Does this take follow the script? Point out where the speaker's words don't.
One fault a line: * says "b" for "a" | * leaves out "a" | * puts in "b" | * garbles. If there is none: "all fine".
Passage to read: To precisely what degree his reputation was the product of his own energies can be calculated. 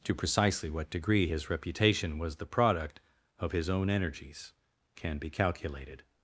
all fine